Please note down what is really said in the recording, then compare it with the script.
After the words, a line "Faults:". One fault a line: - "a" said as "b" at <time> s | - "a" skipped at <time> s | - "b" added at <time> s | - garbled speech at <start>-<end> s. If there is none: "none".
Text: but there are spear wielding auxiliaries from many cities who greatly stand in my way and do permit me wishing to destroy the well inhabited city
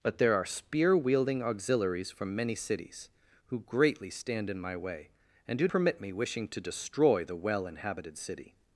but there are spear wielding auxiliaries from many cities who greatly stand in my way and do permit me wishing to destroy the well inhabited city
Faults:
none